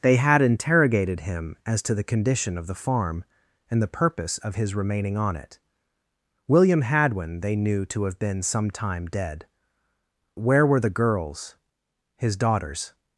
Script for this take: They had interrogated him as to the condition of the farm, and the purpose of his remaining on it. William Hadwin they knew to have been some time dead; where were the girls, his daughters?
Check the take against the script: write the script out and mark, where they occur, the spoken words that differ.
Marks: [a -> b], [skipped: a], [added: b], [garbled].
They had interrogated him as to the condition of the farm, and the purpose of his remaining on it. William Hadwin they knew to have been some time dead; where were the girls, his daughters?